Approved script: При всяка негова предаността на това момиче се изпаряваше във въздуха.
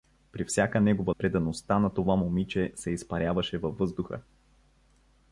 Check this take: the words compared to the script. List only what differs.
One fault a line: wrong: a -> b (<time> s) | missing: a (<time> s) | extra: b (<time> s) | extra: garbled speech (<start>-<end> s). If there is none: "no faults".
no faults